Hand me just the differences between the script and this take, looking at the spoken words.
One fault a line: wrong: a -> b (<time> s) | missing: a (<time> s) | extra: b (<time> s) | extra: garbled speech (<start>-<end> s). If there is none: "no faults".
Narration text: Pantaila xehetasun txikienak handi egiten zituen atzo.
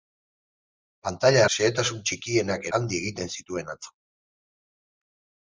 no faults